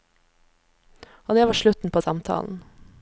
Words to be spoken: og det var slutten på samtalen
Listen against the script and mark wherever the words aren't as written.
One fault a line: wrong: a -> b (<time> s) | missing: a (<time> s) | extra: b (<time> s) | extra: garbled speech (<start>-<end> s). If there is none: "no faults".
no faults